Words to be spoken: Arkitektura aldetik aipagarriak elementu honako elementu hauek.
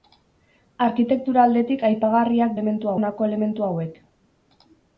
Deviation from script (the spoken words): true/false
false